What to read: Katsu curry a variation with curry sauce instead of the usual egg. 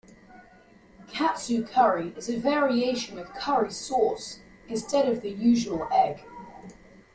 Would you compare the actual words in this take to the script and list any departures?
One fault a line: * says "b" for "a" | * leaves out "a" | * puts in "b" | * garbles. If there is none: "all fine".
* puts in "is"